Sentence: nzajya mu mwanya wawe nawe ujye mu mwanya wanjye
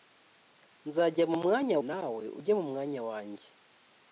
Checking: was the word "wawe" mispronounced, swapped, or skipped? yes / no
yes